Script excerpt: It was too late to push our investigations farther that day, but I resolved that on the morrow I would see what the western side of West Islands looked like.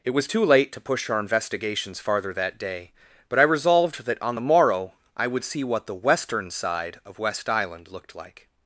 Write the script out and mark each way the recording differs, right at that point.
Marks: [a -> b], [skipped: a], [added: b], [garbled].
It was too late to push our investigations farther that day, but I resolved that on the morrow I would see what the western side of West [Islands -> Island] looked like.